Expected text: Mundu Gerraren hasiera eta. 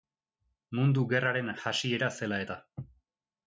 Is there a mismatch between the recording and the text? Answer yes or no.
yes